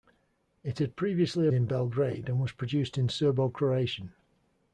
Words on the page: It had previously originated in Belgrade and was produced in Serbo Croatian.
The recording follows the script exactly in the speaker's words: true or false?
false